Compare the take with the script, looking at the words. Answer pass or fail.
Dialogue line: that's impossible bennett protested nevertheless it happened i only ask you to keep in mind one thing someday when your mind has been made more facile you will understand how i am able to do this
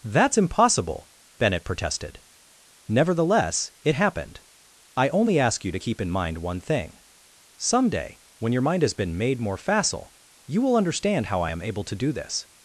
pass